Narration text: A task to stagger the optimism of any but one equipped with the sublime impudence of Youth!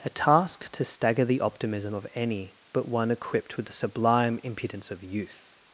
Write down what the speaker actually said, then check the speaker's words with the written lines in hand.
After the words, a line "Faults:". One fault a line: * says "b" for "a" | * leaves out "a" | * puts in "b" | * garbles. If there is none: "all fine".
A task to stagger the optimism of any but one equipped with the sublime impudence of Youth!
Faults:
all fine